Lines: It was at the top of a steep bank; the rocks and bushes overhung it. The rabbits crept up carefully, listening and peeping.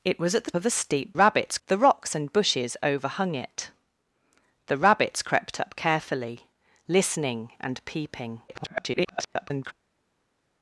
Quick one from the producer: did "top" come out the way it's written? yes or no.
no